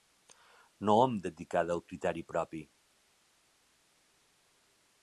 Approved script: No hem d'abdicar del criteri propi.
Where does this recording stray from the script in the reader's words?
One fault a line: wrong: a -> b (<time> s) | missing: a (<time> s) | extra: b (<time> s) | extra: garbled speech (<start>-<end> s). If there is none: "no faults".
no faults